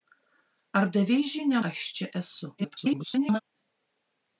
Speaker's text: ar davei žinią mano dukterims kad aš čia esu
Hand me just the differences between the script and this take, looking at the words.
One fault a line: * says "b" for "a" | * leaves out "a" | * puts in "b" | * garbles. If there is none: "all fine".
* leaves out "mano dukterims kad"
* garbles